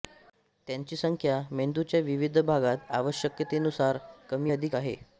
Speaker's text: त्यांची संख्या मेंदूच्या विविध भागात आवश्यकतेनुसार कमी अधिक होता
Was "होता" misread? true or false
true